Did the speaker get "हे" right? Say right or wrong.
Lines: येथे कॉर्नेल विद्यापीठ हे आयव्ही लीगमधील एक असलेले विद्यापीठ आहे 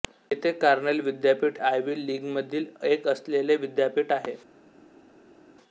wrong